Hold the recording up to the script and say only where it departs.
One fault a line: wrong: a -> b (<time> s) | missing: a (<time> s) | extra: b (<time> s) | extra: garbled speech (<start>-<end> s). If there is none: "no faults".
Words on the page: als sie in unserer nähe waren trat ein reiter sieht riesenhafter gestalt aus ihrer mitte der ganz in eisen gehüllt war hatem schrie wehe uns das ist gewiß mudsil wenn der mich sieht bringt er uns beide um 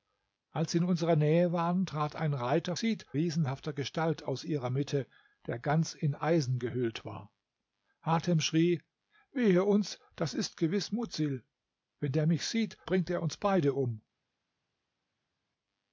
no faults